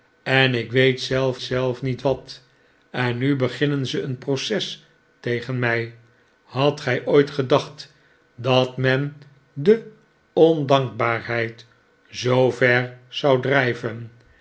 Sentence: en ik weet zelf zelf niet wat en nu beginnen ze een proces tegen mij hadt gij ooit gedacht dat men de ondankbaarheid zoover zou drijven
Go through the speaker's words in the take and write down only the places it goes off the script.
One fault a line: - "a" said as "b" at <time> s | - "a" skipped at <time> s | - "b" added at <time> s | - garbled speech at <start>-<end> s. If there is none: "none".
none